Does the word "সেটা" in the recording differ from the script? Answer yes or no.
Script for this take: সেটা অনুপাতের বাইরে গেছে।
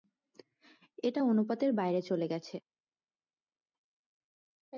yes